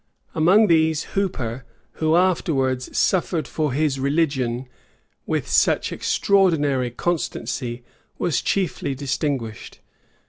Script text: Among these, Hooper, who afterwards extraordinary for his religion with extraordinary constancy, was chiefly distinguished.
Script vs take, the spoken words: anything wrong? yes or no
yes